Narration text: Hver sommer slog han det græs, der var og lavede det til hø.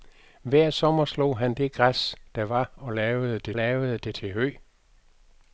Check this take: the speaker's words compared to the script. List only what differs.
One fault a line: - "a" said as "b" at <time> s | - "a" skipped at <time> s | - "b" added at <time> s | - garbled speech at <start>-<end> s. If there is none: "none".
- "lavede det" added at 3.5 s